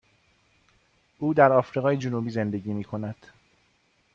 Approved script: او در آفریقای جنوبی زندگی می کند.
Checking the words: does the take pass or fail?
pass